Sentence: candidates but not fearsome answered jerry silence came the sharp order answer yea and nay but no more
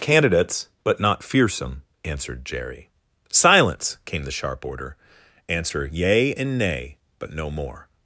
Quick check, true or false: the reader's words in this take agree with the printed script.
true